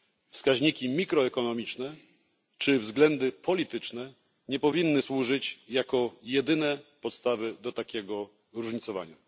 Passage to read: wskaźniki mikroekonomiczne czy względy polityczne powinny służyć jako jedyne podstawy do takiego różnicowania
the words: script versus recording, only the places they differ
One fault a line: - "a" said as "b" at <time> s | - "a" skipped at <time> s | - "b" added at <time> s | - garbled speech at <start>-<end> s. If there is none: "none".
- "nie" added at 4.5 s